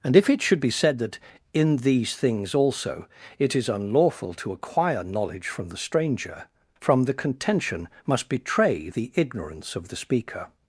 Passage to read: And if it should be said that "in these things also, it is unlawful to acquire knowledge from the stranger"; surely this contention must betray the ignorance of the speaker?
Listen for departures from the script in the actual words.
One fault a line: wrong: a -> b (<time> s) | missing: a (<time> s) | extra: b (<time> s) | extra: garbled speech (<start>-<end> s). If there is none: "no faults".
wrong: surely this -> from the (6.8 s)